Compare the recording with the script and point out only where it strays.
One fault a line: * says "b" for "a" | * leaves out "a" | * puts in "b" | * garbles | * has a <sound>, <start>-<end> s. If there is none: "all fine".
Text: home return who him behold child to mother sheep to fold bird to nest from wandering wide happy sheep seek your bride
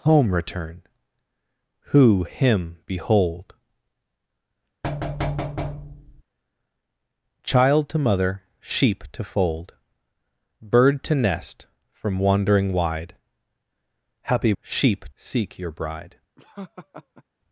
* has a thud, 4.8-6.2 s
* has a laugh, 16.4-17.2 s